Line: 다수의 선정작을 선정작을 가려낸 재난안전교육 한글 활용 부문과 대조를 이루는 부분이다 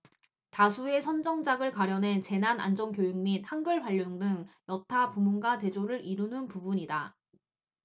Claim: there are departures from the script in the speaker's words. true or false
true